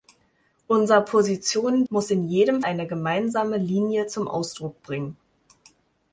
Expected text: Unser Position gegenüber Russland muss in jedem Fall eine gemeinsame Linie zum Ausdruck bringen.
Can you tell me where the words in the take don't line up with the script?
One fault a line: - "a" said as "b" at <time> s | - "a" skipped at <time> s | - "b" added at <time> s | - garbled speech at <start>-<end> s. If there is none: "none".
- "gegenüber Russland" skipped at 1.9 s
- "Fall" skipped at 2.6 s